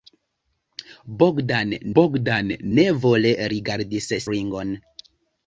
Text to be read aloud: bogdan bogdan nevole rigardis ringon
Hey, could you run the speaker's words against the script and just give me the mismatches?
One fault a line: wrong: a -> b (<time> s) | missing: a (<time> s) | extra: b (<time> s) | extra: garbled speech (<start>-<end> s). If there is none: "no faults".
no faults